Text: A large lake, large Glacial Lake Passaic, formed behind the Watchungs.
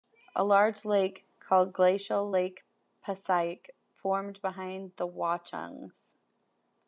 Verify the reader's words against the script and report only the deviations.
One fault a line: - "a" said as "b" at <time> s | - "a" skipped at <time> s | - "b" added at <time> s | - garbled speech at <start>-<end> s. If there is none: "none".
- "large" said as "called" at 1.4 s